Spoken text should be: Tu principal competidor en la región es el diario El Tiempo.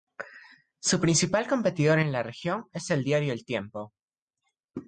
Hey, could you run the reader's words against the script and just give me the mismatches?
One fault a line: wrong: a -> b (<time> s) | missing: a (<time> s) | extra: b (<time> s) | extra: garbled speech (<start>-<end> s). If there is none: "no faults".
wrong: Tu -> Su (0.8 s)